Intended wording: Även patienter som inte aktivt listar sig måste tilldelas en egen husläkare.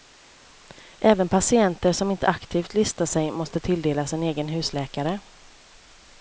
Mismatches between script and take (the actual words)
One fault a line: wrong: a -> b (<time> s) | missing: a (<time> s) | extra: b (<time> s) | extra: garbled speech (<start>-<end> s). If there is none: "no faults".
no faults